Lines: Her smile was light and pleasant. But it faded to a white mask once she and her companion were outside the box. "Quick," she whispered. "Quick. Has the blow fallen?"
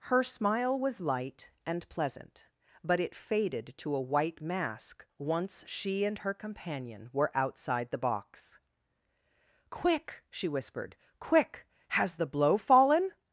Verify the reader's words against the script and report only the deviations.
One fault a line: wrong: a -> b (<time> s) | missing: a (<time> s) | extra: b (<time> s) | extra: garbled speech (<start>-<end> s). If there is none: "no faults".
no faults